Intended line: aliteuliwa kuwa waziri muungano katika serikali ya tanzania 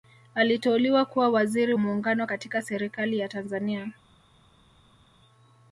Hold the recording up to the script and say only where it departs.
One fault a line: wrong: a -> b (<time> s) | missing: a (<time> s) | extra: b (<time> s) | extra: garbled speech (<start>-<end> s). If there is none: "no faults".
no faults